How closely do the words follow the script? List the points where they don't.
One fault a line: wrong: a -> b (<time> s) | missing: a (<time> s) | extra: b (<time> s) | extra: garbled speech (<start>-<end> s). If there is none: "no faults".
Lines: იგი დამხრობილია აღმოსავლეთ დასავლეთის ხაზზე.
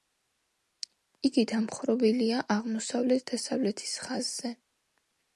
no faults